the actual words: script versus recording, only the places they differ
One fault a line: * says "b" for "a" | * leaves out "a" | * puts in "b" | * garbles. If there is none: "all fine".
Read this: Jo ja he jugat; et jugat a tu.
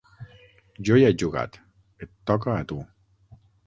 * says "toca" for "jugat"